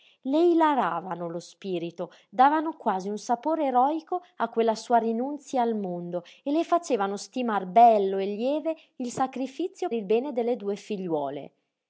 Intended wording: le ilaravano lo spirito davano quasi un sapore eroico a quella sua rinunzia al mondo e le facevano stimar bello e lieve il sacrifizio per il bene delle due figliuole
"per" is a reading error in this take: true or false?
true